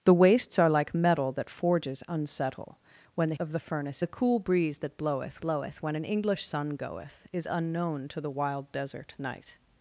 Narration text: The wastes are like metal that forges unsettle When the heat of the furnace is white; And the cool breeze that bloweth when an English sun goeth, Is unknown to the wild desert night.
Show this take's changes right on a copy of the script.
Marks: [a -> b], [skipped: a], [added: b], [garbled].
The wastes are like metal that forges unsettle When the [skipped: heat] of the furnace [skipped: is white; And] the cool breeze that bloweth [added: bloweth] when an English sun goeth, Is unknown to the wild desert night.